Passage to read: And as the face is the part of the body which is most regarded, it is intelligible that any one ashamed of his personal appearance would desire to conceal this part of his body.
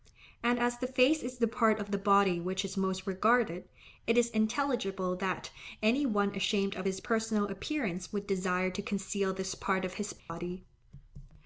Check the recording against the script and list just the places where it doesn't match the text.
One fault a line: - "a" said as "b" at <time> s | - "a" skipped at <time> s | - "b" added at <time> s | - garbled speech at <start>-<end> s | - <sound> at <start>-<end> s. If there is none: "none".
- dropout at 10.2-10.3 s